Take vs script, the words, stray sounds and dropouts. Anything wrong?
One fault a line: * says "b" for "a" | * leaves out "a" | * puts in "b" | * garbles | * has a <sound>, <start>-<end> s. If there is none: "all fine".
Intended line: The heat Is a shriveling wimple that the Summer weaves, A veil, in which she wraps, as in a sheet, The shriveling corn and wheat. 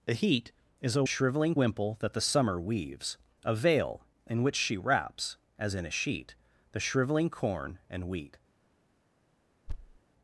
* has a thud, 9.7-10.0 s